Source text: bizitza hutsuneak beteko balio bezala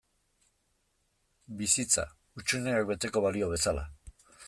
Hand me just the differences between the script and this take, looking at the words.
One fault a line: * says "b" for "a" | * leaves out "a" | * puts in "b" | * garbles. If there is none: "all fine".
all fine